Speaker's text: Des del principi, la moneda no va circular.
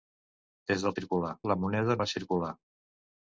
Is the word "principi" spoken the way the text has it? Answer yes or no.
no